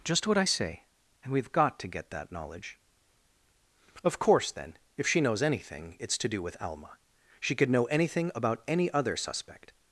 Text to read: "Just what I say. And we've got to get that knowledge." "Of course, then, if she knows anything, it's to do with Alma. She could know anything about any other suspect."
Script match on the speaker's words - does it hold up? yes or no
yes